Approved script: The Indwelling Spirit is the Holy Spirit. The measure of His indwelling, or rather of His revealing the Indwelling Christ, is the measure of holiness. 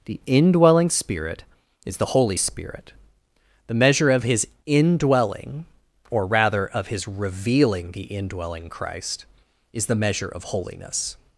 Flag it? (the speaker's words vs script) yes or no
no